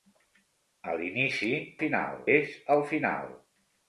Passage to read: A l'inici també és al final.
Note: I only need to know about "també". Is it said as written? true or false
false